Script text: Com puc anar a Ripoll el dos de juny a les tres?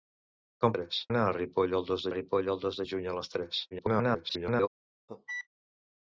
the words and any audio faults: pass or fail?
fail